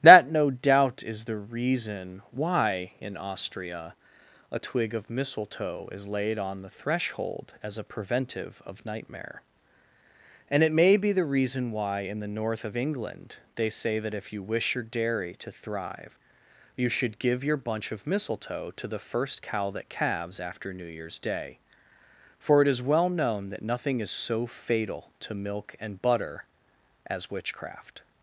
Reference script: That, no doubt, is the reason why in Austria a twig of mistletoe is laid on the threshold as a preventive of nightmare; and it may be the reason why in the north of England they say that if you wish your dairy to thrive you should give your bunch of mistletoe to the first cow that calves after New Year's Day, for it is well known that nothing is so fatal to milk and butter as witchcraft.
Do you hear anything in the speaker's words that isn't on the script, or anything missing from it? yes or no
no